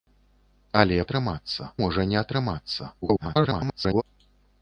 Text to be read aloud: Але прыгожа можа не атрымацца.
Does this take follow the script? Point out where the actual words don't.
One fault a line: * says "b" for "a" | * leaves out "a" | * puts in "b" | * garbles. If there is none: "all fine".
* says "атрымацца" for "прыгожа"
* garbles